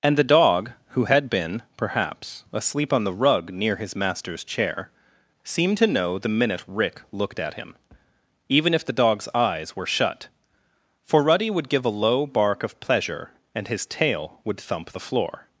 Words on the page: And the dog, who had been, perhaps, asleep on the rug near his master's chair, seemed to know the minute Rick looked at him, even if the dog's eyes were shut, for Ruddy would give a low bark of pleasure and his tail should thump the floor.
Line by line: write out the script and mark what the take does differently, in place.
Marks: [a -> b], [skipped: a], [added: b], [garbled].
And the dog, who had been, perhaps, asleep on the rug near his master's chair, seemed to know the minute Rick looked at him, even if the dog's eyes were shut, for Ruddy would give a low bark of pleasure and his tail [should -> would] thump the floor.